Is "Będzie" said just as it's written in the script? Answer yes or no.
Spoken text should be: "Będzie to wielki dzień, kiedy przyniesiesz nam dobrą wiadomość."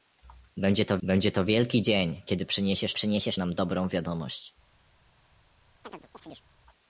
yes